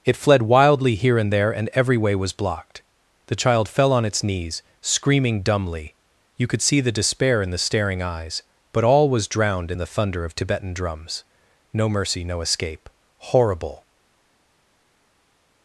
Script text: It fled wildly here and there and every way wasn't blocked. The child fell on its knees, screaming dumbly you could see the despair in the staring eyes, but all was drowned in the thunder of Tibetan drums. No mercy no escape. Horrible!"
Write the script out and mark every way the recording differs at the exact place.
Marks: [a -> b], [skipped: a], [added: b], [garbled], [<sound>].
It fled wildly here and there and every way [wasn't -> was] blocked. The child fell on its knees, screaming dumbly you could see the despair in the staring eyes, but all was drowned in the thunder of Tibetan drums. No mercy no escape. Horrible!"